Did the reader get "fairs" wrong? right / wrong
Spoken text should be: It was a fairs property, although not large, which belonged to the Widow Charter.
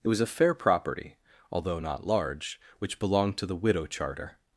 wrong